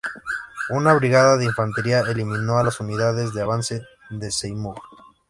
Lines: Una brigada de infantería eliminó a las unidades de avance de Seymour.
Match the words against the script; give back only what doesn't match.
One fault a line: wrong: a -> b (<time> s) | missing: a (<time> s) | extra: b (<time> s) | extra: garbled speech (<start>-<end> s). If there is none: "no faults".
no faults